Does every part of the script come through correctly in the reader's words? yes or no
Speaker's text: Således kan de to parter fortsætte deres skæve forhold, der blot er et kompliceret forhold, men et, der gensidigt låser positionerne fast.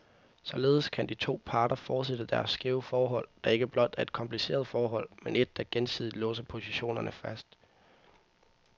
no